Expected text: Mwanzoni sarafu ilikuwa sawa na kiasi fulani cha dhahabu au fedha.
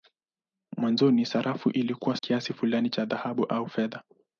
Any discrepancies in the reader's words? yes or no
yes